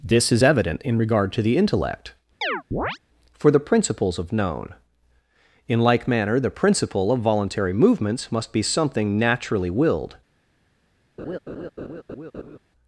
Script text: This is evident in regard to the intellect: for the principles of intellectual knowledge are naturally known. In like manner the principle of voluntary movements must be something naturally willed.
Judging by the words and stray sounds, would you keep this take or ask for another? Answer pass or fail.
fail